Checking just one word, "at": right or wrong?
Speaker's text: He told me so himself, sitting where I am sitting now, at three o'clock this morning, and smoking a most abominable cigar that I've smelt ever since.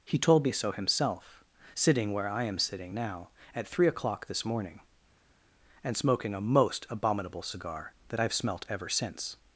right